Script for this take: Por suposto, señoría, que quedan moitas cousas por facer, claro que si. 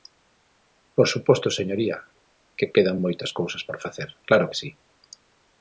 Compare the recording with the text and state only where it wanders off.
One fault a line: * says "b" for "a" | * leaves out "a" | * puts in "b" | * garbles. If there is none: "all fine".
all fine